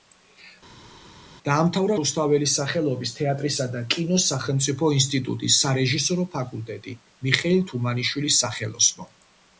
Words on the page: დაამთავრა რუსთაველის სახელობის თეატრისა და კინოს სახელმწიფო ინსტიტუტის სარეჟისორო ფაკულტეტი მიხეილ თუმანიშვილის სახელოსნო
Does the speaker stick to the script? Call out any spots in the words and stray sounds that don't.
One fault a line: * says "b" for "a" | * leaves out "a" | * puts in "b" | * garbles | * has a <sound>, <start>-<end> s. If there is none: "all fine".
all fine